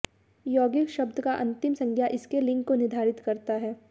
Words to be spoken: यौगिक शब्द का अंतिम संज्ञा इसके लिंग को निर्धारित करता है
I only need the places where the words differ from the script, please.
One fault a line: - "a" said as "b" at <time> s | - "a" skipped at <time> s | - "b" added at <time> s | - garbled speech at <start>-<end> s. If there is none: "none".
none